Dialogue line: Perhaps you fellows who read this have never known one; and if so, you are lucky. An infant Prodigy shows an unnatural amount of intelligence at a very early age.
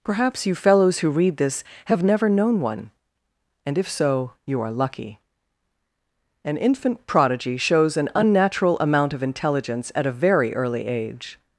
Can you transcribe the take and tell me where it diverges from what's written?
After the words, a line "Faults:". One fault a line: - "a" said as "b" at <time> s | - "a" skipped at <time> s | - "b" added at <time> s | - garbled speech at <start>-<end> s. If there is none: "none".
Perhaps you fellows who read this have never known one; and if so, you are lucky. An infant Prodigy shows an unnatural amount of intelligence at a very early age.
Faults:
none